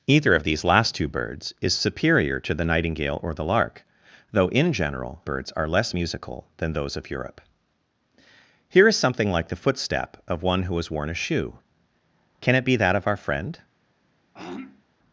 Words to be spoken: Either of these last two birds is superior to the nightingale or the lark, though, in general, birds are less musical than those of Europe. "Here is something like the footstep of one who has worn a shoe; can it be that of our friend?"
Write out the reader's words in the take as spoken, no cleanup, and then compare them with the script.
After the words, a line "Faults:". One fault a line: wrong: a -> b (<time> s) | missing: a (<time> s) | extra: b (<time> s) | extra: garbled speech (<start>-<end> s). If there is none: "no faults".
Either of these last two birds is superior to the nightingale or the lark, though, in general, birds are less musical than those of Europe. "Here is something like the footstep of one who has worn a shoe; can it be that of our friend?"
Faults:
no faults